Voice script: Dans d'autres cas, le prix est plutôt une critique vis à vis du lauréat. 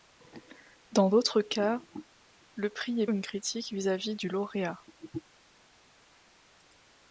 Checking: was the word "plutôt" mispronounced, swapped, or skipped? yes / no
yes